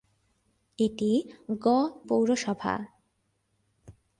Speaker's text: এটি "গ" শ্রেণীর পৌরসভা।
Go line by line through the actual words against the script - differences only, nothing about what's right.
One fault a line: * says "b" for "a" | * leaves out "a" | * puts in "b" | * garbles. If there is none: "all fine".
* leaves out "শ্রেণীর"